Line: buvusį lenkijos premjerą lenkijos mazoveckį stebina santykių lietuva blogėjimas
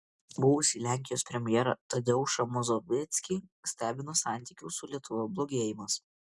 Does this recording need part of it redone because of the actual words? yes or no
yes